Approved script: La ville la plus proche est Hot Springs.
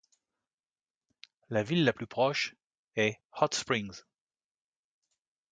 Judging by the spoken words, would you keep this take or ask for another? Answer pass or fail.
pass